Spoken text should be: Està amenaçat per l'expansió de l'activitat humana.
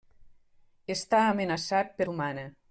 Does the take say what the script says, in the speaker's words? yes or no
no